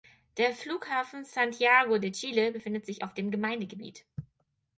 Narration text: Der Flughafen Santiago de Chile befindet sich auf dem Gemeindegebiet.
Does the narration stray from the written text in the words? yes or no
no